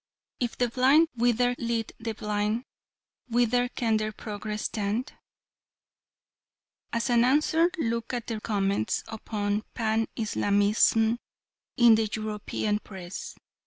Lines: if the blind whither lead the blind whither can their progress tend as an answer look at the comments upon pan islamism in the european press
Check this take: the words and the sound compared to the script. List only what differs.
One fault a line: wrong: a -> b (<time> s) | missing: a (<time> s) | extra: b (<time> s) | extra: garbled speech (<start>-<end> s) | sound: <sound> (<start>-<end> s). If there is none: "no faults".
no faults